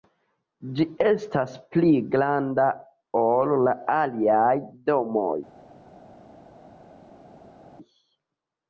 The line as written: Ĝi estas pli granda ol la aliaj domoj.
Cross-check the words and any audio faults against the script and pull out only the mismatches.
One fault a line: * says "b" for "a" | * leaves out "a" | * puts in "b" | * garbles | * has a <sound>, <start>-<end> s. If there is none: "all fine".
all fine